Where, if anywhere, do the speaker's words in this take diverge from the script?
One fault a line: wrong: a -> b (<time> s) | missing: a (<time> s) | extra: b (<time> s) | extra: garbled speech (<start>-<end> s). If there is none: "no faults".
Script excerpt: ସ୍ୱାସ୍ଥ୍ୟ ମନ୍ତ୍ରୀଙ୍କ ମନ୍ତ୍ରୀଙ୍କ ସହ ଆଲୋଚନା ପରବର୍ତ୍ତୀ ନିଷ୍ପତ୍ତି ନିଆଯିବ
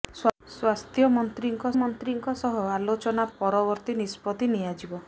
no faults